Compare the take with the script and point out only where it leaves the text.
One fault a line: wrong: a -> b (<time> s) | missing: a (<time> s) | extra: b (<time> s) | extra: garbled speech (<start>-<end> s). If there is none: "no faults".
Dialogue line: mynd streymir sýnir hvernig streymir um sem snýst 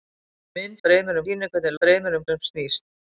no faults